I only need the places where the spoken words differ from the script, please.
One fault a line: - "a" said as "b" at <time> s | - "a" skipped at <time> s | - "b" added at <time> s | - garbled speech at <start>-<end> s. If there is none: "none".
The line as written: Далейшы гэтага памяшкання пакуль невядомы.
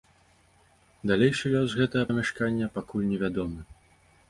- "лёс" added at 1.6 s